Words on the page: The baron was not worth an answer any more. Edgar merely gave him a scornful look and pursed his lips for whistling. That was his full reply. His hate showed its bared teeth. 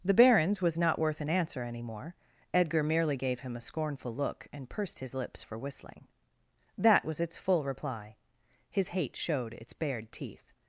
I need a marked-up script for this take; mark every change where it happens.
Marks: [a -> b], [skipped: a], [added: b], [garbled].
The [baron -> barons] was not worth an answer any more. Edgar merely gave him a scornful look and pursed his lips for whistling. That was [his -> its] full reply. His hate showed its bared teeth.